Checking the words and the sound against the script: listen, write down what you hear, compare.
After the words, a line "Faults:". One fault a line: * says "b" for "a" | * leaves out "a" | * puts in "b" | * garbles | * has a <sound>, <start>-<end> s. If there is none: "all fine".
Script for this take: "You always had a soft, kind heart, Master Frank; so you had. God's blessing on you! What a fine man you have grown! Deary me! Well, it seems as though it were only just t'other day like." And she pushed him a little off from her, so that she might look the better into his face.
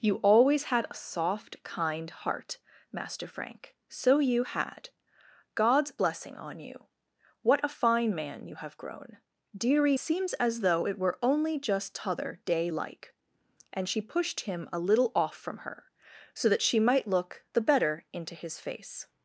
"You always had a soft, kind heart, Master Frank; so you had. God's blessing on you! What a fine man you have grown! Deary seems as though it were only just t'other day like." And she pushed him a little off from her, so that she might look the better into his face.
Faults:
* leaves out "me Well it"